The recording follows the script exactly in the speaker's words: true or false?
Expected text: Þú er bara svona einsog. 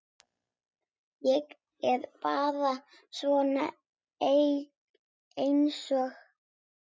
false